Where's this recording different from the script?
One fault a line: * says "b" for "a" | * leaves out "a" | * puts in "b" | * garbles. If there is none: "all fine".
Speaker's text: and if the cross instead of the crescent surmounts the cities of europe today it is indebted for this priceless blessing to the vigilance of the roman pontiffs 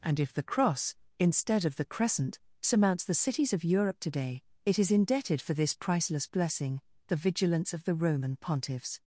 * leaves out "to"